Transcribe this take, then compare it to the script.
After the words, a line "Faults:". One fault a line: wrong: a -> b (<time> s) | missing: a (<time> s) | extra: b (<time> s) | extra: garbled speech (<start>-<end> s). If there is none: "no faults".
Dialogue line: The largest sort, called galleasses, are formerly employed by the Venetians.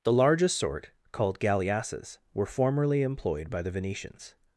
The largest sort, called galleasses, were formerly employed by the Venetians.
Faults:
wrong: are -> were (2.3 s)